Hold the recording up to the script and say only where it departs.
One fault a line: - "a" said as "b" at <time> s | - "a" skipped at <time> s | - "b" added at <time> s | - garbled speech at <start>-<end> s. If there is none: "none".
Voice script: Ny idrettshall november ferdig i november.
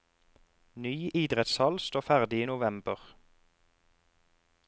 - "november" said as "står" at 1.9 s